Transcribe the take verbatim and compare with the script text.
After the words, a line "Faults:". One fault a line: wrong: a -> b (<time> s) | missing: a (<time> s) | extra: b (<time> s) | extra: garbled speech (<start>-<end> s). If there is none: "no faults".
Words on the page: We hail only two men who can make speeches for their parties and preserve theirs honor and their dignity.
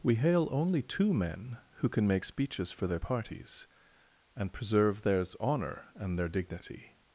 We hail only two men who can make speeches for their parties and preserve theirs honor and their dignity.
Faults:
no faults